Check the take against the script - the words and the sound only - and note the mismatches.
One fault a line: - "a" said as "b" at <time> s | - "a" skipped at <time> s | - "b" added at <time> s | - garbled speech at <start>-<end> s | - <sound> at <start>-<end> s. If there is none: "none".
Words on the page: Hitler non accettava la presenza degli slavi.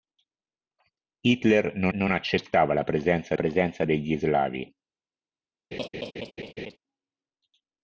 - "non" added at 1.9 s
- "presenza" added at 3.3 s
- laugh at 5.7-6.8 s